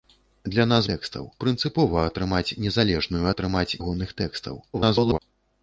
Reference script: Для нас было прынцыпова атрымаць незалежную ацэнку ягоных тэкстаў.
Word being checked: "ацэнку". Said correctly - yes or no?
no